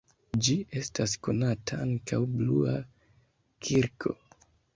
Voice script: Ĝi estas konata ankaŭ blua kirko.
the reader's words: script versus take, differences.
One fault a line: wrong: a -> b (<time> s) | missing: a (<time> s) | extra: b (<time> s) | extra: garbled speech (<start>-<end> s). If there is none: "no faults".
no faults